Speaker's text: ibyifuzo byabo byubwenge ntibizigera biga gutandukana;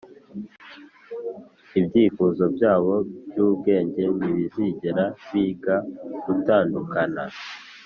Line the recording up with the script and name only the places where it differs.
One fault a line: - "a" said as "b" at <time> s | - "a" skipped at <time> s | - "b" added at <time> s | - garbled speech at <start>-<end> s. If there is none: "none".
none